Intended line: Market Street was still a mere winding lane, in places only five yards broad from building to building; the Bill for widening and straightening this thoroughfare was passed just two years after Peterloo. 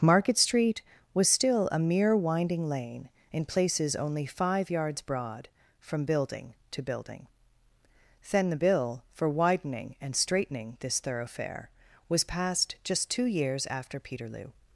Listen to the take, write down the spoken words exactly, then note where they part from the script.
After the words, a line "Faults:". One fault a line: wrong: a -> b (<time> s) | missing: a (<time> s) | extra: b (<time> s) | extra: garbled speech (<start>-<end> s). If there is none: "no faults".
Market Street was still a mere winding lane, in places only five yards broad from building to building; then the Bill for widening and straightening this thoroughfare was passed just two years after Peterloo.
Faults:
extra: then (8.3 s)